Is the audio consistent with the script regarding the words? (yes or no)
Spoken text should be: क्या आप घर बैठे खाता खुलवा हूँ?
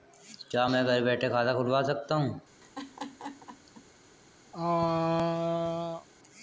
no